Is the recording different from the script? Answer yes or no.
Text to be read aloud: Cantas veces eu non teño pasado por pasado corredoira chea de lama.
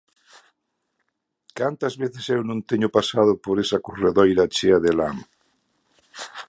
yes